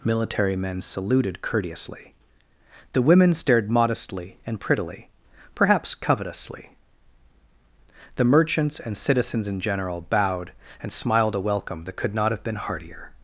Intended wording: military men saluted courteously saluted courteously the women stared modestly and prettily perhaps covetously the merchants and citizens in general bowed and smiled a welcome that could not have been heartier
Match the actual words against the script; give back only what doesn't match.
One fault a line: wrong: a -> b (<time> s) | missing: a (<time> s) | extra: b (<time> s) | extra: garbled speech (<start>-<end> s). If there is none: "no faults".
missing: saluted courteously (2.1 s)